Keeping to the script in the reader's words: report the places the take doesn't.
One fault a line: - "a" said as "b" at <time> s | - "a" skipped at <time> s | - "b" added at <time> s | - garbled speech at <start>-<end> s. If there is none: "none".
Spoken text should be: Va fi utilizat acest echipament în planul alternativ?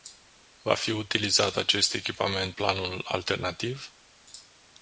- "în" skipped at 2.5 s